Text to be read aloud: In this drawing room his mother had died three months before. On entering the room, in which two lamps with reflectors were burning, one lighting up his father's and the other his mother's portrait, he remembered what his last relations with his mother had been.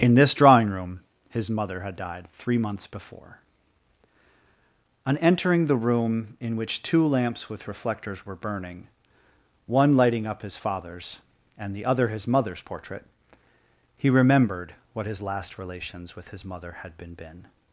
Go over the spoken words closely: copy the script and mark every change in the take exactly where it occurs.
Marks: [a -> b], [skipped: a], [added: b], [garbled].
In this drawing room his mother had died three months before. On entering the room, in which two lamps with reflectors were burning, one lighting up his father's and the other his mother's portrait, he remembered what his last relations with his mother had been. [added: been]